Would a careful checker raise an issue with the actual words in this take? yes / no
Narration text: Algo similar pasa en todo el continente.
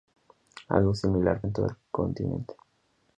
yes